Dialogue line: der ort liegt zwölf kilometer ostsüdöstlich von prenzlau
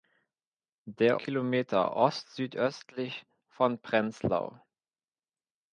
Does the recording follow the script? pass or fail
fail